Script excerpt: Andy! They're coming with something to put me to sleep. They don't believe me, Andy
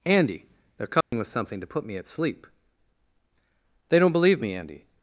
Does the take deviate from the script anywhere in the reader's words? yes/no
yes